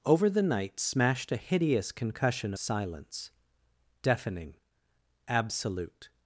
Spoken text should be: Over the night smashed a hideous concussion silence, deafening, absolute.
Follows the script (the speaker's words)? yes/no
yes